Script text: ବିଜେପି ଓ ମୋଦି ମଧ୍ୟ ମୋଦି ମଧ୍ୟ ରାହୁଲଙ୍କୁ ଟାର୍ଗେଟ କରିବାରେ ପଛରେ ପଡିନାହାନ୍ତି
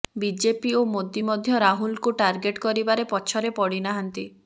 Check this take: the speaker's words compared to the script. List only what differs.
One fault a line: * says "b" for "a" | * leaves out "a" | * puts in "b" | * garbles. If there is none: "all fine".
* leaves out "ମୋଦି ମଧ୍ୟ"